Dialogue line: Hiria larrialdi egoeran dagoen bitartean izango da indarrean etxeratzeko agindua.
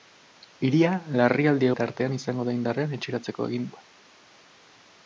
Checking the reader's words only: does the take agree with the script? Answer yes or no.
no